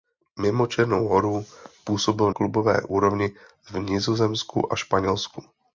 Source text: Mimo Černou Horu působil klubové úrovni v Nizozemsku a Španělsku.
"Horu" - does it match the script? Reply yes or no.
yes